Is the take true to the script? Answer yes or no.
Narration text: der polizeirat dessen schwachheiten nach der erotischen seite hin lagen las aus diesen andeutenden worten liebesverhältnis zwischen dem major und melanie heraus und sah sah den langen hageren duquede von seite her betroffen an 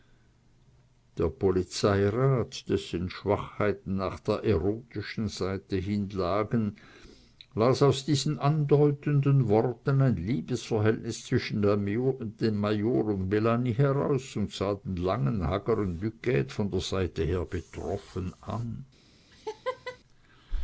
no